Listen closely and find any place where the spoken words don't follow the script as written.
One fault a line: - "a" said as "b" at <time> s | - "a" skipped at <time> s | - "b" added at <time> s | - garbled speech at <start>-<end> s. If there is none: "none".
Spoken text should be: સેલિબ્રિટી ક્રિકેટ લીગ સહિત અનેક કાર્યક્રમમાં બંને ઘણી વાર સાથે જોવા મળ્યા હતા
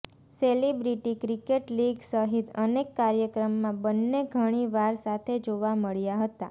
none